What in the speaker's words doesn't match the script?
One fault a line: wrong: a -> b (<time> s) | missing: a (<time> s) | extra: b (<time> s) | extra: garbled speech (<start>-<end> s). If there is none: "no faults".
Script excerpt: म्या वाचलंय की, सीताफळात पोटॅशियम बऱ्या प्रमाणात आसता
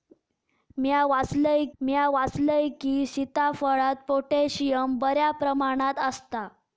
extra: म्या वाचलंय (1.8 s)